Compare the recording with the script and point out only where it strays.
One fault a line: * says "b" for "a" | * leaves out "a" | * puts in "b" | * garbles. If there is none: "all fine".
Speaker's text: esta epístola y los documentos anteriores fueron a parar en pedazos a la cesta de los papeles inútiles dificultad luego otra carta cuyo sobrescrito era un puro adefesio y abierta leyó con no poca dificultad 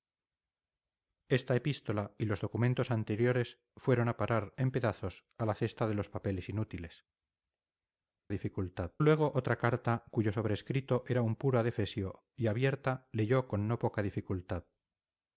all fine